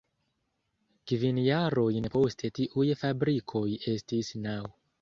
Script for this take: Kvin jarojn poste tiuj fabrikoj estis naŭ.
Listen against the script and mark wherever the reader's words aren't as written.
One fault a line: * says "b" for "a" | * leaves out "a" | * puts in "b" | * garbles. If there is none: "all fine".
all fine